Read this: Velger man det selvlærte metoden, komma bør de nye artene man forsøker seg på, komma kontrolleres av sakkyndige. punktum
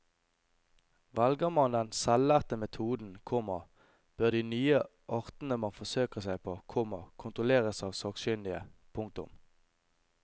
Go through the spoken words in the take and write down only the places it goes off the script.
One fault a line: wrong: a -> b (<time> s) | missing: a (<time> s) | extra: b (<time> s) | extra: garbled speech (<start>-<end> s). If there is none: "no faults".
wrong: det -> den (1.8 s)